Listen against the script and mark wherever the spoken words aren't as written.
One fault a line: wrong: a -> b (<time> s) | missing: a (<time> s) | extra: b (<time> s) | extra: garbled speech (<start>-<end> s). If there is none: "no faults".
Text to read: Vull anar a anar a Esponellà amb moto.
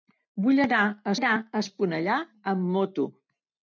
no faults